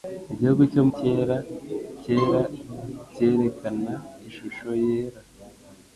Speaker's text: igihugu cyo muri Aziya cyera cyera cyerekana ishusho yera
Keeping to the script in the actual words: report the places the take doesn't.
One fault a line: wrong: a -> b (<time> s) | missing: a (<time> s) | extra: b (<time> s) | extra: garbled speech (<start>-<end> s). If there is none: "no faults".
missing: muri Aziya (0.8 s)